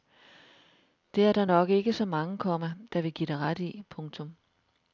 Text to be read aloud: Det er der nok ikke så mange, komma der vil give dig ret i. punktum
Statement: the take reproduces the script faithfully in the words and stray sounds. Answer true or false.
true